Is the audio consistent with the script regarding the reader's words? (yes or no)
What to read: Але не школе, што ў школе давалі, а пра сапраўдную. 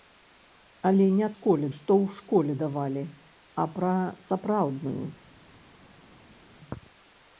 yes